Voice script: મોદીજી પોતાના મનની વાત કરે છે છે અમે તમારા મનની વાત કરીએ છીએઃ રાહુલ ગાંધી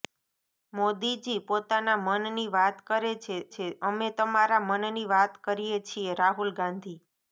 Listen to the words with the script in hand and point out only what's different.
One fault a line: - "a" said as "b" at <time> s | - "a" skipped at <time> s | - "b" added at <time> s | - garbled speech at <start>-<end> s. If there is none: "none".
none